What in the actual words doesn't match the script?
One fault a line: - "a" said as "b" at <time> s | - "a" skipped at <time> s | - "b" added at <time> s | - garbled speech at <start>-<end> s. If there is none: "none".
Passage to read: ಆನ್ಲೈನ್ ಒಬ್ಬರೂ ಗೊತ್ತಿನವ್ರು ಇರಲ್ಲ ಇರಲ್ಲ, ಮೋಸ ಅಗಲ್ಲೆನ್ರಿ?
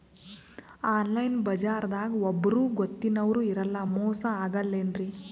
- "ಬಜಾರದಾಗ" added at 1.4 s
- "ಇರಲ್ಲ" skipped at 3.8 s